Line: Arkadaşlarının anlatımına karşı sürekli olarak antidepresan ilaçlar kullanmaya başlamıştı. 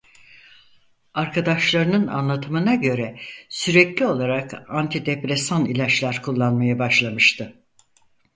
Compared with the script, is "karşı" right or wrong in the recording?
wrong